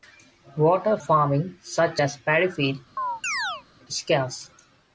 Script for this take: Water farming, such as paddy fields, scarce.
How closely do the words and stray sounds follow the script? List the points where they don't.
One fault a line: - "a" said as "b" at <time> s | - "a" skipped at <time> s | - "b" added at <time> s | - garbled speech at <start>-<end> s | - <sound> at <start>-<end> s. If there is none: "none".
- chirp at 3.0-3.6 s